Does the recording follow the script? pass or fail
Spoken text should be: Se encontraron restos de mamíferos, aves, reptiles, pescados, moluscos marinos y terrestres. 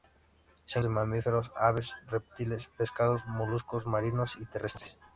fail